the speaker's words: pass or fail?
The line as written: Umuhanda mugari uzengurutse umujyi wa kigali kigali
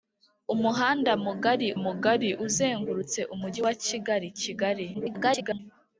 fail